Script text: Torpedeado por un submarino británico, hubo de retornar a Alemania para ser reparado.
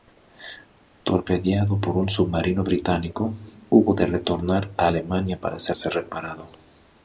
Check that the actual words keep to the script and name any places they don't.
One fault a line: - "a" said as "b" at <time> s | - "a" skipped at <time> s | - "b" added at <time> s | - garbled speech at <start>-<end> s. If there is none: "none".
- "ser" added at 5.8 s